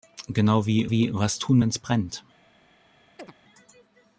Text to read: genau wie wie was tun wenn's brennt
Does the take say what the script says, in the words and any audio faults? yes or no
no